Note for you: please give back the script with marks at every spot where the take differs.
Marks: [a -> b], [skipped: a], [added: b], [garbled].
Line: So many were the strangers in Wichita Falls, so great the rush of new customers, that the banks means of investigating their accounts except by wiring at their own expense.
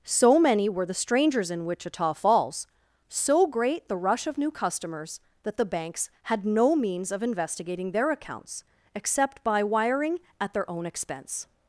So many were the strangers in Wichita Falls, so great the rush of new customers, that the banks [added: had no] means of investigating their accounts except by wiring at their own expense.